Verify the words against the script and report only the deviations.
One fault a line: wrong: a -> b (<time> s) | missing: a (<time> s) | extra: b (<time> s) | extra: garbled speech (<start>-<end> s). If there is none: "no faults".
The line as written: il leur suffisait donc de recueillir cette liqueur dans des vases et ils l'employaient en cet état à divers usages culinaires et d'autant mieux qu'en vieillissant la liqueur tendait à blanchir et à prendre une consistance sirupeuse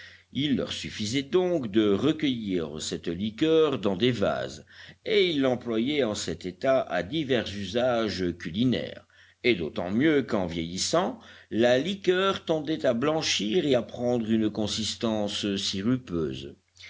no faults